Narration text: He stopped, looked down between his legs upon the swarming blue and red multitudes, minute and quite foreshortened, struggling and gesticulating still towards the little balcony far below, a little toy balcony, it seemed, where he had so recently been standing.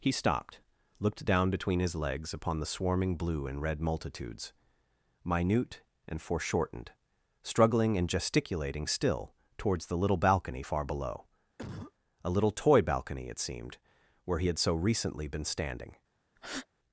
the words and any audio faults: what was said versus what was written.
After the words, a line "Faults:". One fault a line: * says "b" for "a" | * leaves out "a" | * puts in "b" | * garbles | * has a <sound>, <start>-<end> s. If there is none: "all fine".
He stopped, looked down between his legs upon the swarming blue and red multitudes, minute and foreshortened, struggling and gesticulating still towards the little balcony far below, a little toy balcony, it seemed, where he had so recently been standing.
Faults:
* leaves out "quite"
* has a cough, 11.6-11.9 s
* has a breath, 16.4-16.7 s